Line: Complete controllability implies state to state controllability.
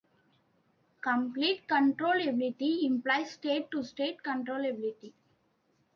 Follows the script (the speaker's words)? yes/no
yes